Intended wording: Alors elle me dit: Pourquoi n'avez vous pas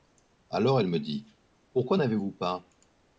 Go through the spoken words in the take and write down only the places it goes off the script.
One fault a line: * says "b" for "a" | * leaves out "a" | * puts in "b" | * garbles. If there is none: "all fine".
all fine